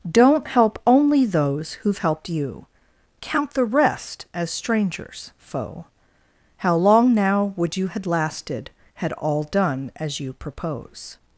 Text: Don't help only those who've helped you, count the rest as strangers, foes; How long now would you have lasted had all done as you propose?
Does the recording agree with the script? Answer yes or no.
no